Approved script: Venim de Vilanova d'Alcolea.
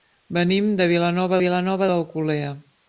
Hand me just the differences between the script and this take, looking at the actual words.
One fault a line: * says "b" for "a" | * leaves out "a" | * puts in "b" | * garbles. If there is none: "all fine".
* puts in "Vilanova"